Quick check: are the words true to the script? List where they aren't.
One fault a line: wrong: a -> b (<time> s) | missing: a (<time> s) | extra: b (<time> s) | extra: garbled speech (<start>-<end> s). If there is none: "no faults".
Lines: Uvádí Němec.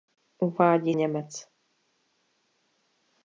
no faults